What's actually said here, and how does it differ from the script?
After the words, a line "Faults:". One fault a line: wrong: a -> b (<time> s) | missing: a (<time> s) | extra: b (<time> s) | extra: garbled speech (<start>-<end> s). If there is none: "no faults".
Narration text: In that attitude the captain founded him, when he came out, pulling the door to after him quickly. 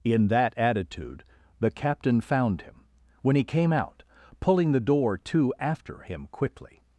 In that attitude the captain found him, when he came out, pulling the door to after him quickly.
Faults:
wrong: founded -> found (2.2 s)